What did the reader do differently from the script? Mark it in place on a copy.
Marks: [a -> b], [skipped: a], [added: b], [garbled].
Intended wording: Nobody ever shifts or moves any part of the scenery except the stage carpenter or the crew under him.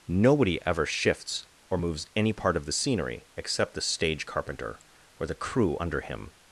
Nobody ever shifts or moves any part of the scenery except the stage carpenter or the crew under him.